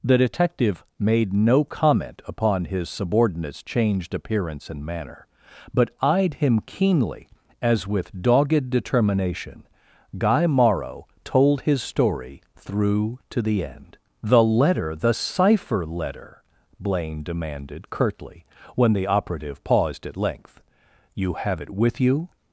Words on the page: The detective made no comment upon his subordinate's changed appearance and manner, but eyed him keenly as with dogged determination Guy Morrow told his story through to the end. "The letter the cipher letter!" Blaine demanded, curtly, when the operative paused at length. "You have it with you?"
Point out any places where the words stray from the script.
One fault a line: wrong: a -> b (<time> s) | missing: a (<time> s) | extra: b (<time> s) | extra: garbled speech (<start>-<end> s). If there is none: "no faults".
no faults